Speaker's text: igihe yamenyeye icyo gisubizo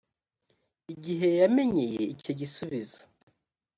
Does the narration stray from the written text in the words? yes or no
no